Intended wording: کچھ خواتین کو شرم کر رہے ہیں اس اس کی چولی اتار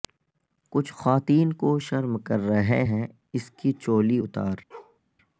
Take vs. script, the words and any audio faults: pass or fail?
fail